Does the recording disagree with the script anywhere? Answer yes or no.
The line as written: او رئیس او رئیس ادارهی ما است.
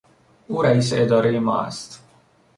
yes